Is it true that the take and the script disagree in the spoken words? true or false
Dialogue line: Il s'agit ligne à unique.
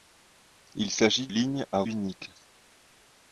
false